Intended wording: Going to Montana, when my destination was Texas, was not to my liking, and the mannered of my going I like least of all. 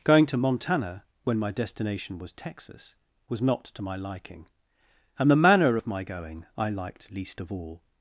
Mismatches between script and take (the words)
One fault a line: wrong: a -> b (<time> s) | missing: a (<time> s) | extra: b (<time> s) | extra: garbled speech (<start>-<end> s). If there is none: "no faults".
wrong: mannered -> manner (5.3 s)
wrong: like -> liked (6.7 s)